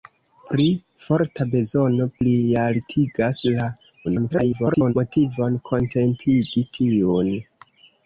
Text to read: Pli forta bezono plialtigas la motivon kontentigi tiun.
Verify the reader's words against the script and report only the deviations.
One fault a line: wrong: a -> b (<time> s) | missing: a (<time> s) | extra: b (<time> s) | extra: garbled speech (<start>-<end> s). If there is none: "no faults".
extra: garbled speech (4.0-4.9 s)